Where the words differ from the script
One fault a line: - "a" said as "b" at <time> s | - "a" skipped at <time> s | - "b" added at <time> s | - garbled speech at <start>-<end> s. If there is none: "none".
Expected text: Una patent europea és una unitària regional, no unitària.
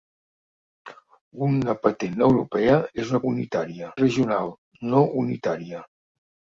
none